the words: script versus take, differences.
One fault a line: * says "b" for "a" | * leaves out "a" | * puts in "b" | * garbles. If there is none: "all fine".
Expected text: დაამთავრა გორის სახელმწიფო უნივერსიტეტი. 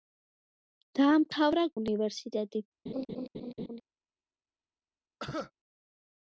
* leaves out "გორის სახელმწიფო"